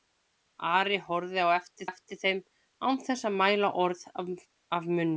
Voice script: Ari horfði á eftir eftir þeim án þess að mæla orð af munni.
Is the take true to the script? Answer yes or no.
yes